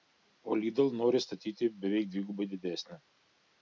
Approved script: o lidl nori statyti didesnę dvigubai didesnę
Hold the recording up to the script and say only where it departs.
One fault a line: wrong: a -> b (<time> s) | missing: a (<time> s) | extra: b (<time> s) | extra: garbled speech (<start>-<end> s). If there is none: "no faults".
wrong: didesnę -> beveik (1.9 s)